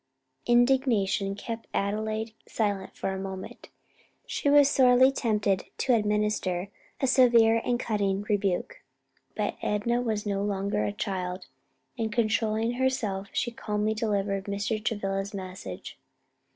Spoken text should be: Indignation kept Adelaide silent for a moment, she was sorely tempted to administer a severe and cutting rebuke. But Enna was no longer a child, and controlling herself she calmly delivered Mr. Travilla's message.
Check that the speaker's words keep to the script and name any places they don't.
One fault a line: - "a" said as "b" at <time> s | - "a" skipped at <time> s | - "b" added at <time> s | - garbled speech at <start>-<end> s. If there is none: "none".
none